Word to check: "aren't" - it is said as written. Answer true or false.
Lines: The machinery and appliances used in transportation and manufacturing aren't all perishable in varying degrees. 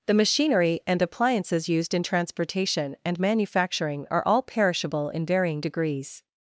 false